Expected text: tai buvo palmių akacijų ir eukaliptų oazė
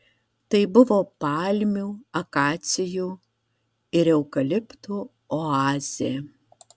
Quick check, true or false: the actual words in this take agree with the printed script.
true